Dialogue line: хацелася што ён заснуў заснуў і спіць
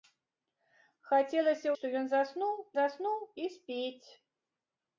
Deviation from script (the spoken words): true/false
false